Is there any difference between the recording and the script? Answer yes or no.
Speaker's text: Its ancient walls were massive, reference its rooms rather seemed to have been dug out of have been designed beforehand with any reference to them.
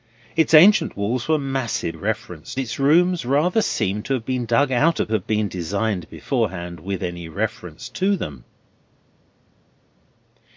no